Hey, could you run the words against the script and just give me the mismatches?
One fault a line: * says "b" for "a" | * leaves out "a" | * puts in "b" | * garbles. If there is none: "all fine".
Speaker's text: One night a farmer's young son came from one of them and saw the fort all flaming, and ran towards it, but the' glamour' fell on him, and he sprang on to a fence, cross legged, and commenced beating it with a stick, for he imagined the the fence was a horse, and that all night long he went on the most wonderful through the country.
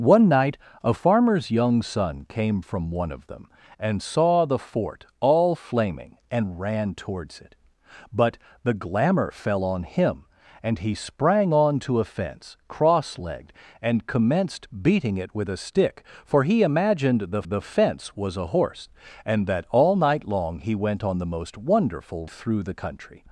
all fine